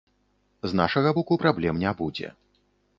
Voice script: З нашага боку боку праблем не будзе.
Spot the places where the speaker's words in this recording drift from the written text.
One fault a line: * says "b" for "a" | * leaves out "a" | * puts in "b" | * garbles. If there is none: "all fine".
* leaves out "боку"